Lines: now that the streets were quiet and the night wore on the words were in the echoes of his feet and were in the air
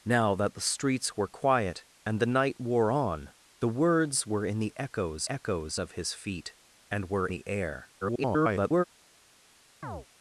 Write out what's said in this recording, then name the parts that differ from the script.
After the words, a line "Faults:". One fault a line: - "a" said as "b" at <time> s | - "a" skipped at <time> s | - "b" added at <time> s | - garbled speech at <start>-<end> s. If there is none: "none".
now that the streets were quiet and the night wore on the words were in the echoes echoes of his feet and were the air [garbled]
Faults:
- "echoes" added at 5.3 s
- "in" skipped at 7.3 s
- garbled speech at 8.0-8.8 s